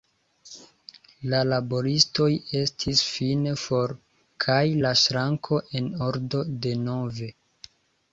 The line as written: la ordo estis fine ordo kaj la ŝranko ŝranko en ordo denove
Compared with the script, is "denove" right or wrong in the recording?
right